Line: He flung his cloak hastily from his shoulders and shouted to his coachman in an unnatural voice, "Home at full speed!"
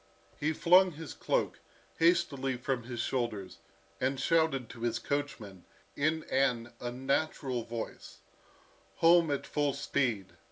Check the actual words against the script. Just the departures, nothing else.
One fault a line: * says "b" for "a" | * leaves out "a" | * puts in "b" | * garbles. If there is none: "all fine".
all fine